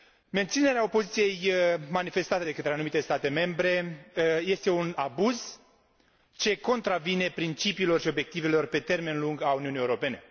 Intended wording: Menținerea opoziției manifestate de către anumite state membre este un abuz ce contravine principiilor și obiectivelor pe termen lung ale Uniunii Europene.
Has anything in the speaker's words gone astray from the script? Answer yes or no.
no